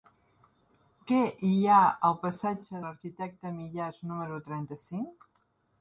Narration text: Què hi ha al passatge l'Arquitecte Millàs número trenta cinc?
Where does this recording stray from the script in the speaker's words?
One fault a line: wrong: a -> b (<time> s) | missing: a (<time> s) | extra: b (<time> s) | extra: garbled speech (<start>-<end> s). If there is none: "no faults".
no faults